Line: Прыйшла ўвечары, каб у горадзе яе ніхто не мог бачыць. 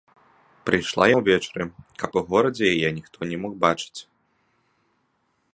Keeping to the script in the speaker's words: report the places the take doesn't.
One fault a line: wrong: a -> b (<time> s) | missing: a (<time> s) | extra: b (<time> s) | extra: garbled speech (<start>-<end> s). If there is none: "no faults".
no faults